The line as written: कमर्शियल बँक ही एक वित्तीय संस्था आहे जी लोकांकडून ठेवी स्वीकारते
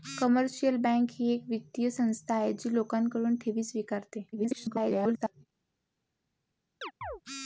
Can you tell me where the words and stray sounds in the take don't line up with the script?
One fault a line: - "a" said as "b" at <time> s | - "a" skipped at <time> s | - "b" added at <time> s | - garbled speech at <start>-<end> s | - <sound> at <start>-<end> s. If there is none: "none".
- garbled speech at 4.3-5.5 s
- chirp at 6.8-7.2 s